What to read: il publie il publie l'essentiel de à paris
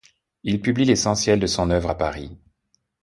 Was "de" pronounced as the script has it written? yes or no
no